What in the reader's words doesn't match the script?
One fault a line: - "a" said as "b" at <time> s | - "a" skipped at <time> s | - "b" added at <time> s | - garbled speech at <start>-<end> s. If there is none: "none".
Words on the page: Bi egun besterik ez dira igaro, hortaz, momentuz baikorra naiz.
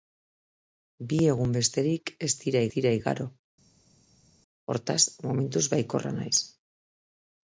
- "dira" added at 2.8 s